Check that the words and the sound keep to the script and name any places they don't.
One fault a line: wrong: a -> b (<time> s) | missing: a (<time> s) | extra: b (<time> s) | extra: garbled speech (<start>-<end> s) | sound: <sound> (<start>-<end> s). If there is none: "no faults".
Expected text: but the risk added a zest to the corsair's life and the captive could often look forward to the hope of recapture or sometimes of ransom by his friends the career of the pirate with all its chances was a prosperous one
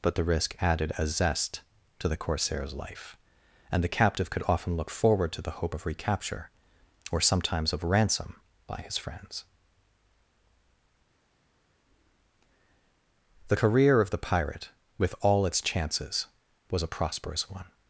no faults